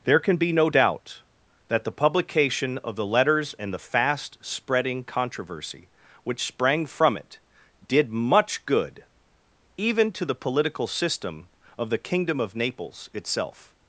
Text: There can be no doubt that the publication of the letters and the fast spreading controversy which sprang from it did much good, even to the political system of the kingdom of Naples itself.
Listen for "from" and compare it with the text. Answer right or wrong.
right